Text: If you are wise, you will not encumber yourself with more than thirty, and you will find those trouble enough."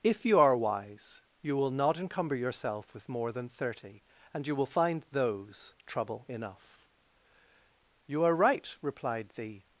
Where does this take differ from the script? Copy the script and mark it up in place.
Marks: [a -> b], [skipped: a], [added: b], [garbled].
If you are wise, you will not encumber yourself with more than thirty, and you will find those trouble enough." [added: You are right replied the]